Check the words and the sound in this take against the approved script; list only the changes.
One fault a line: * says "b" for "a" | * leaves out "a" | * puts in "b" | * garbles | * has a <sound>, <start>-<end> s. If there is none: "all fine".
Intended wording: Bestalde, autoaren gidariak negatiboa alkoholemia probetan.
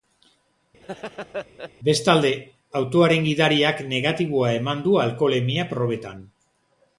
* has a laugh, 0.8-1.7 s
* puts in "eman du"